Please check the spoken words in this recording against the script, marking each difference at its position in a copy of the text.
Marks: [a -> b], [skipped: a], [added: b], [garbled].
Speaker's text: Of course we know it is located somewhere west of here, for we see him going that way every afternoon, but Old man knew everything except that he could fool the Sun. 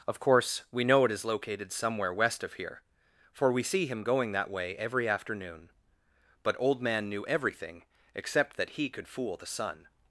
Of course we know it is located somewhere west of here, for we see him going that way every afternoon, but Old man knew everything except that he could fool the Sun.